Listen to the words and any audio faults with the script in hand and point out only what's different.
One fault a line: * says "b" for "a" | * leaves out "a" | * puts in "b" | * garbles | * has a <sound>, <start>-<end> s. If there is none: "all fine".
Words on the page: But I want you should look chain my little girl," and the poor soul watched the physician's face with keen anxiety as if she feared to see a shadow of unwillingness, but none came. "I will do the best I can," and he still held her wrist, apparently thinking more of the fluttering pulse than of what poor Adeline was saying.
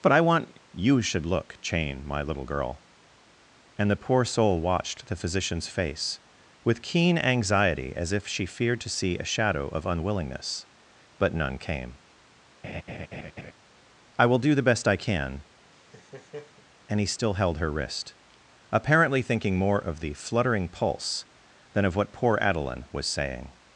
* has a laugh, 12.6-13.5 s
* has a laugh, 15.7-16.6 s